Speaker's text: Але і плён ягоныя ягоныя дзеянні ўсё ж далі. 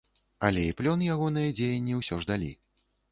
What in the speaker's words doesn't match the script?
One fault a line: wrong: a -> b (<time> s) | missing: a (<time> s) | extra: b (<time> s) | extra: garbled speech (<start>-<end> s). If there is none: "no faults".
missing: ягоныя (1.5 s)